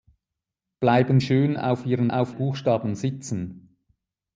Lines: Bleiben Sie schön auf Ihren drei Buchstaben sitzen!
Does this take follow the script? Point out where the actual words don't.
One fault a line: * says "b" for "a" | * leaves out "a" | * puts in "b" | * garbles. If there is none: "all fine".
* leaves out "Sie"
* says "auf" for "drei"